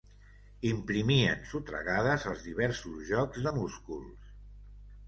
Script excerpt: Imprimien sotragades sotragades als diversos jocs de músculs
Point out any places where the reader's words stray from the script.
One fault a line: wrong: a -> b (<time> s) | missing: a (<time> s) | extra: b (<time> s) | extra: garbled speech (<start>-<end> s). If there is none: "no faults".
missing: sotragades (2.3 s)